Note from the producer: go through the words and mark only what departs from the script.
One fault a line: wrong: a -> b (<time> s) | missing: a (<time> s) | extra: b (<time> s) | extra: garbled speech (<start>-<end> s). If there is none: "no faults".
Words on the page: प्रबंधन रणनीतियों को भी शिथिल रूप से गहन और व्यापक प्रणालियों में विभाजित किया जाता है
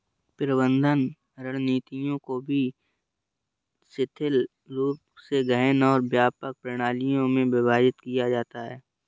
no faults